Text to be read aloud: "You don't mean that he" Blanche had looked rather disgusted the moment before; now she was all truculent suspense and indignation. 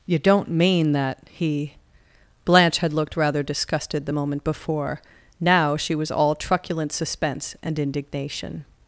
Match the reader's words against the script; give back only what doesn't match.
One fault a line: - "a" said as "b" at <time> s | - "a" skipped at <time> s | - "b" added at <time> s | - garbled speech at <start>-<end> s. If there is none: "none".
none